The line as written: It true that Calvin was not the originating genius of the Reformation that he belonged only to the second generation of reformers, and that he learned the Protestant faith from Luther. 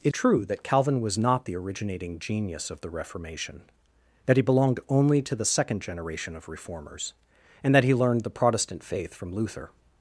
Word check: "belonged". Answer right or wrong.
right